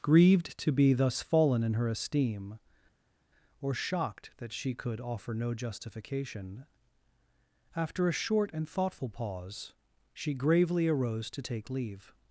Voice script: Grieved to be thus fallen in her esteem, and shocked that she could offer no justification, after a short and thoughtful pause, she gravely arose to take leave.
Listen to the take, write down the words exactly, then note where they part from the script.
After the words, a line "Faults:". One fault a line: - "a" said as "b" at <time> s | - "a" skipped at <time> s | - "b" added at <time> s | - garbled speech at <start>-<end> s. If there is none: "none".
Grieved to be thus fallen in her esteem, or shocked that she could offer no justification, after a short and thoughtful pause, she gravely arose to take leave.
Faults:
- "and" said as "or" at 3.6 s